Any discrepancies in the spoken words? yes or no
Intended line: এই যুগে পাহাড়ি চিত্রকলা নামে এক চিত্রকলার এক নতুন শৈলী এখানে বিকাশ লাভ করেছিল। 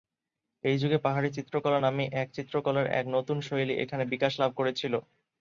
no